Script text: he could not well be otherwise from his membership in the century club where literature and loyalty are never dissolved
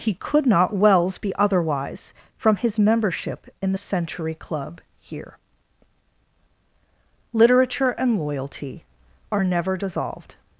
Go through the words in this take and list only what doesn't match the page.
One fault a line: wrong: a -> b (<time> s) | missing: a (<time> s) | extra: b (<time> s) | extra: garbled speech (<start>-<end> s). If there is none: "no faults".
wrong: well -> wells (0.8 s)
wrong: where -> here (5.0 s)